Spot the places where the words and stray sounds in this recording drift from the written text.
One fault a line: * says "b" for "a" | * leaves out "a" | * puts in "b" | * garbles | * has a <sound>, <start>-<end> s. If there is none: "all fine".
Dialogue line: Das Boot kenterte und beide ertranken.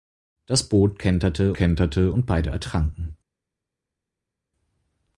* puts in "kenterte"